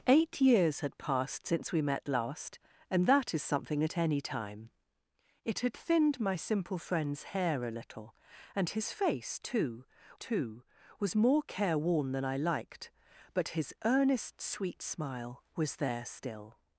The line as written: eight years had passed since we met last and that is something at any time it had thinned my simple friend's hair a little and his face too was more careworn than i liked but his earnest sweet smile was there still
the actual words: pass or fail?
fail